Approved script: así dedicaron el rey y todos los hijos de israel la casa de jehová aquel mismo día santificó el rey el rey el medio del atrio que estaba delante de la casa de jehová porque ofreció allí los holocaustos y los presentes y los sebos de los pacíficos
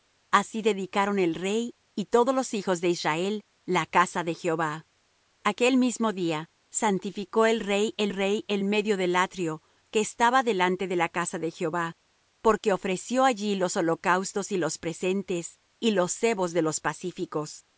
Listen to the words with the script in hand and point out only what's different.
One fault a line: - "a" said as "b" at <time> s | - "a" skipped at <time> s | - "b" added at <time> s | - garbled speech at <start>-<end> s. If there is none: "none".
none